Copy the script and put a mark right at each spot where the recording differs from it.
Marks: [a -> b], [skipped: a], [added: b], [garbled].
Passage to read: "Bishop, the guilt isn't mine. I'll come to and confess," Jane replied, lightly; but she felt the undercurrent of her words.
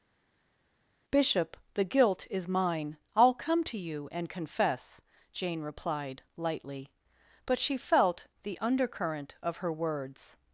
"Bishop, the guilt [isn't -> is] mine. I'll come to [added: you] and confess," Jane replied, lightly; but she felt the undercurrent of her words.